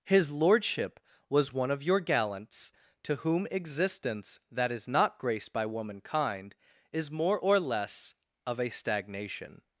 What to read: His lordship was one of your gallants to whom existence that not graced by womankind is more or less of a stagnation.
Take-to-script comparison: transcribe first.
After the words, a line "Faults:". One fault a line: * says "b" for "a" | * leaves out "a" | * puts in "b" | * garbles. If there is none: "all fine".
His lordship was one of your gallants to whom existence that is not graced by womankind is more or less of a stagnation.
Faults:
* puts in "is"